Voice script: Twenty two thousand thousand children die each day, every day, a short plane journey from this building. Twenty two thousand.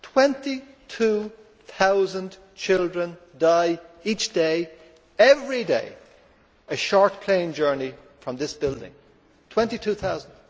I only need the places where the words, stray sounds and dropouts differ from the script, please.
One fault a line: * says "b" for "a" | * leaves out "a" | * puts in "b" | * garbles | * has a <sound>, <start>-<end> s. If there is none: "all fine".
* leaves out "thousand"